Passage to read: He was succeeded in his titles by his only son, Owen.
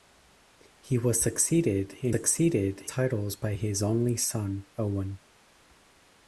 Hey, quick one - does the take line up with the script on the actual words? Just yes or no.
no